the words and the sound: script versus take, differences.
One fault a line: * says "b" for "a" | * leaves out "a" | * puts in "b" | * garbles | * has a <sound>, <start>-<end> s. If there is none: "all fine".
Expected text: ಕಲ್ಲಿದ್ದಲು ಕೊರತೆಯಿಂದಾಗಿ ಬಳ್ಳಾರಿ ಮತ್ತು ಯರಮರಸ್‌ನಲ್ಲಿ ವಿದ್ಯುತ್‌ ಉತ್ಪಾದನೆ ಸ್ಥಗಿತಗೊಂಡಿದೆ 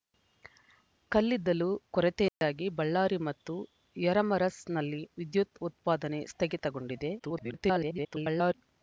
* has a dropout, 2.3-2.4 s
* garbles